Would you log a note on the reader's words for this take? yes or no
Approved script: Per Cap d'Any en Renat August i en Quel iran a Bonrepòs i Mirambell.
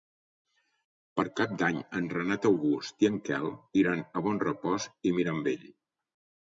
no